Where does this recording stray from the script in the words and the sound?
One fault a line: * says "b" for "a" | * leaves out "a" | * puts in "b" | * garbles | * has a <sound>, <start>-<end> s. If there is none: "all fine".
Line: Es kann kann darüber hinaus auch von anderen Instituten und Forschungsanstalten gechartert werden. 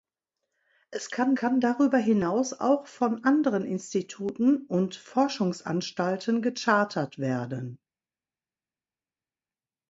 all fine